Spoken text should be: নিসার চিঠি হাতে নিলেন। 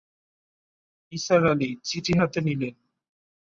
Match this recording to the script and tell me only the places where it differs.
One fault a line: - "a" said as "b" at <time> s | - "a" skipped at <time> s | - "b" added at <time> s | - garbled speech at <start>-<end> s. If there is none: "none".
- "আলি" added at 1.5 s